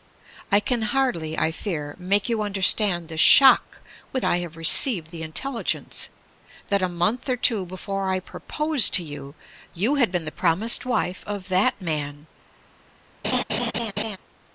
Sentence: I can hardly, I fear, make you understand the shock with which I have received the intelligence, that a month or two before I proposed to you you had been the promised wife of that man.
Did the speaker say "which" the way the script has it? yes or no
no